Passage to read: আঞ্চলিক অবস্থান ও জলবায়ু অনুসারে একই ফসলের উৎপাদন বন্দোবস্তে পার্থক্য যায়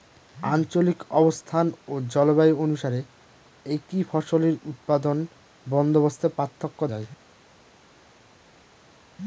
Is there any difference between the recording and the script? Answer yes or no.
no